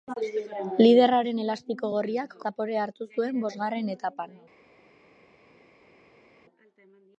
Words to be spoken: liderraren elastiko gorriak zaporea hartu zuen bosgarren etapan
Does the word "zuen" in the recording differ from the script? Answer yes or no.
no